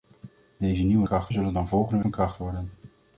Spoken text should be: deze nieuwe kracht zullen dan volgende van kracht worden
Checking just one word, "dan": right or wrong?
right